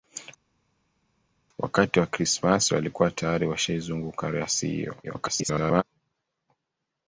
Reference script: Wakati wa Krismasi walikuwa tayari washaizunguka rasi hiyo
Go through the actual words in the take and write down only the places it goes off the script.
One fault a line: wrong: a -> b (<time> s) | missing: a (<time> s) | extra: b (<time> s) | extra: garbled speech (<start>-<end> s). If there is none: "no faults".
extra: garbled speech (5.0-5.8 s)